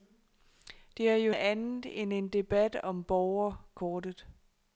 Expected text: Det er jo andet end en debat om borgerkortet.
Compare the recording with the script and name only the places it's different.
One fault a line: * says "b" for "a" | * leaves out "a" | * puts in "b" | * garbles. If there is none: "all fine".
all fine